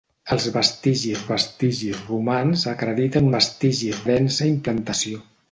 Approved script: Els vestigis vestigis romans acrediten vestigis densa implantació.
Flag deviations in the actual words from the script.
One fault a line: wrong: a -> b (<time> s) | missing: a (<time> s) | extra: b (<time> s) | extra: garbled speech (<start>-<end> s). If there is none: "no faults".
no faults